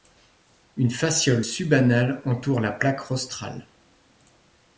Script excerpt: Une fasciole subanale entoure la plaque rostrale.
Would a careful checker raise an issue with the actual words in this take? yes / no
no